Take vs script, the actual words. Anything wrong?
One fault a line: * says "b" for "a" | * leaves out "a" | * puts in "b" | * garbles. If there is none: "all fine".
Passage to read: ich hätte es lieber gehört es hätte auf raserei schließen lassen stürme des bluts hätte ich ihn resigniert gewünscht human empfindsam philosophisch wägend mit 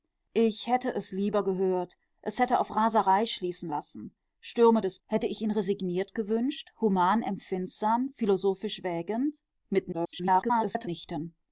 * leaves out "bluts"
* garbles